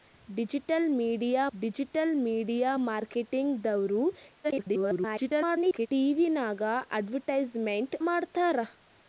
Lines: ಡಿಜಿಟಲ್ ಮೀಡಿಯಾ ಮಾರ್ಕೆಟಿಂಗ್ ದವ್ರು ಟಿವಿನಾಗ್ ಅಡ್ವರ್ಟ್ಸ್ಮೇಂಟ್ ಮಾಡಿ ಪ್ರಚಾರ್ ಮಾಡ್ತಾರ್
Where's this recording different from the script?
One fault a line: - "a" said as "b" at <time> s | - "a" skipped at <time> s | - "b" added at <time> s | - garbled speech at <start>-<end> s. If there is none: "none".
- "ಡಿಜಿಟಲ್ ಮೀಡಿಯಾ" added at 1.5 s
- garbled speech at 4.4-5.9 s
- "ಮಾಡಿ ಪ್ರಚಾರ್" skipped at 8.0 s